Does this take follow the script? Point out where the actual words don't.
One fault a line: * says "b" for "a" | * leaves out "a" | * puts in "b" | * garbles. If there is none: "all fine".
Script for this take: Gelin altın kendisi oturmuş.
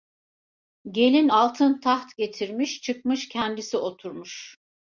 * puts in "taht getirmiş çıkmış"